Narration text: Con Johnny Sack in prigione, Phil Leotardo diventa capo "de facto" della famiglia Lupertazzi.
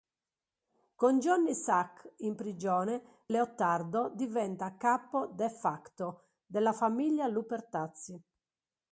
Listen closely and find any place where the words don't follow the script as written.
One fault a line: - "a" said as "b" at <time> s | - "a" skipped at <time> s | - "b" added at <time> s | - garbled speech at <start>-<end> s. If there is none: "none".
- "Phil" skipped at 3.2 s